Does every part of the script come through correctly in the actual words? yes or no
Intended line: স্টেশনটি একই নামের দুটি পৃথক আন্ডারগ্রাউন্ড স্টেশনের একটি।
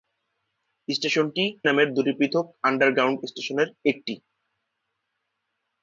no